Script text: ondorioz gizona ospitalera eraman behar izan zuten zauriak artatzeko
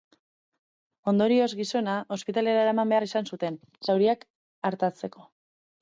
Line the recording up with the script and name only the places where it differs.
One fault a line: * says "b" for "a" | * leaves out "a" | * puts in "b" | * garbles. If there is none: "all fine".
all fine